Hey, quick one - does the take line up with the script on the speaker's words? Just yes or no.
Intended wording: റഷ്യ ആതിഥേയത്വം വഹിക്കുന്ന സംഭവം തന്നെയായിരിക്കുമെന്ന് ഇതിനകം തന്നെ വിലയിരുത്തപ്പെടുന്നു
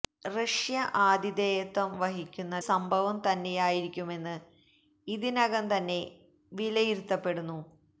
yes